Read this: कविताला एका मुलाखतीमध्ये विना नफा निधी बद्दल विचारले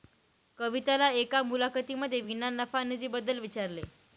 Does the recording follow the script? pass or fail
pass